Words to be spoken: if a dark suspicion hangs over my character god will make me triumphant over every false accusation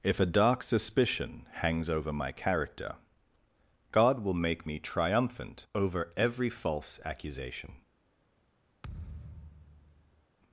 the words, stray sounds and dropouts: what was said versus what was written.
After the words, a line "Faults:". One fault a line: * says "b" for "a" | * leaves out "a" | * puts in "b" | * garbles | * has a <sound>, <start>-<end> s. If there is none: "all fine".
if a dark suspicion hangs over my character god will make me triumphant over every false accusation
Faults:
* has a thud, 8.8-10.3 s